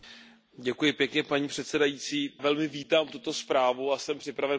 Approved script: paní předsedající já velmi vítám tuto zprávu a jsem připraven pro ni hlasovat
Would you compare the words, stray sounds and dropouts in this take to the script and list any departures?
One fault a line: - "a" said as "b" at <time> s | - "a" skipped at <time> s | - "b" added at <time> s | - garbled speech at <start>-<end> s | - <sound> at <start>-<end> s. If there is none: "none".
- "já" skipped at 2.3 s